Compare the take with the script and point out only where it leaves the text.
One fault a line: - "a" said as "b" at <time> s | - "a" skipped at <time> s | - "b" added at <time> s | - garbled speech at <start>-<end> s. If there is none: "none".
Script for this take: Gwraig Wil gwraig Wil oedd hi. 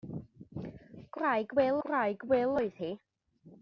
none